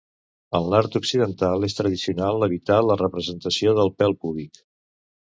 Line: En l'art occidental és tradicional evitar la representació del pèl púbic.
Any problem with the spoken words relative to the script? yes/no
no